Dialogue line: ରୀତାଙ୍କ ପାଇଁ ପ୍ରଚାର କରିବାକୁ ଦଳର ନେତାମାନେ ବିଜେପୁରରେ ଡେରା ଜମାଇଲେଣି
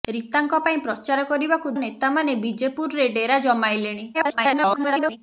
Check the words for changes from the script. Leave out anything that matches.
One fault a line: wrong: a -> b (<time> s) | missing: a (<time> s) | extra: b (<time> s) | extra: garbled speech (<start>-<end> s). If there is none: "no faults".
missing: ଦଳର (1.7 s)
extra: garbled speech (4.1-5.2 s)